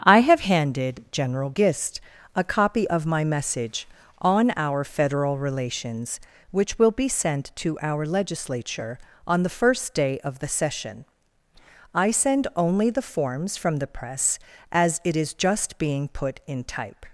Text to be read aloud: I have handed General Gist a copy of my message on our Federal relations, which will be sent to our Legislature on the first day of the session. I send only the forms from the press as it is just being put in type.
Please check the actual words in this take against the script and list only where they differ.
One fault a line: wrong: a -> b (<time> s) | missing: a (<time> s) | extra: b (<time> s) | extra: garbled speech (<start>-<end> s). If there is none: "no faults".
no faults